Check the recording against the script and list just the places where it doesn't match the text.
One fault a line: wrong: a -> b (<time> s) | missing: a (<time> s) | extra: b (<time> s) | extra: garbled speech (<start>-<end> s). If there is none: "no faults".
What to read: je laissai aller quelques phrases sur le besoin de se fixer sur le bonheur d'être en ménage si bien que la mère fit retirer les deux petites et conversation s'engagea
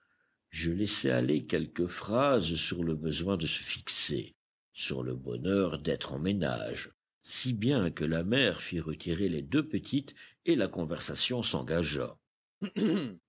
extra: la (10.6 s)